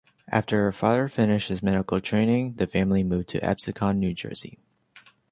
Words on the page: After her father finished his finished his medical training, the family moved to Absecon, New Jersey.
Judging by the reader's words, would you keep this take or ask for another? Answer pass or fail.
fail